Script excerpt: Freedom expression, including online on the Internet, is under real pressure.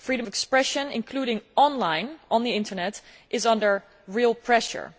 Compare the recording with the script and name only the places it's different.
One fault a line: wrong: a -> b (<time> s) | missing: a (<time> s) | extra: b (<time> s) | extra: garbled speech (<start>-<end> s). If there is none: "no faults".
no faults